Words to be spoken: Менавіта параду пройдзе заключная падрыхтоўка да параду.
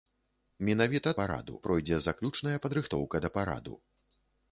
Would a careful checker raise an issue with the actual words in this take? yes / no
no